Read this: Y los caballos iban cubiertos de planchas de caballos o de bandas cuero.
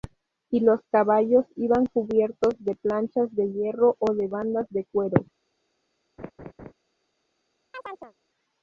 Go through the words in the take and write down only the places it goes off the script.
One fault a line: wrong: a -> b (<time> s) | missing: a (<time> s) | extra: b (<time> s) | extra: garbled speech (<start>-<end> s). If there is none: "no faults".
wrong: caballos -> hierro (3.5 s)
extra: de (4.7 s)